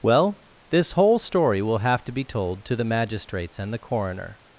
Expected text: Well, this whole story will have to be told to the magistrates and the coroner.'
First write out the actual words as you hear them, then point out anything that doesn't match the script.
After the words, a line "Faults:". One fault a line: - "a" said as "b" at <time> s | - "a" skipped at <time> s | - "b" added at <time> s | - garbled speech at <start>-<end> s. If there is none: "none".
Well, this whole story will have to be told to the magistrates and the coroner.'
Faults:
none